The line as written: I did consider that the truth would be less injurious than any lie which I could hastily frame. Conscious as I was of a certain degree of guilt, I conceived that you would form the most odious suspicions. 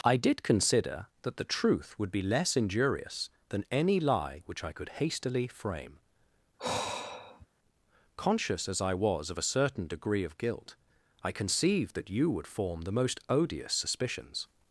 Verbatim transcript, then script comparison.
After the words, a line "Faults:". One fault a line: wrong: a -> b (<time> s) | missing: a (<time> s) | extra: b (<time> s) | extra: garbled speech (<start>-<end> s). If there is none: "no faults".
I did consider that the truth would be less injurious than any lie which I could hastily frame. Conscious as I was of a certain degree of guilt, I conceived that you would form the most odious suspicions.
Faults:
no faults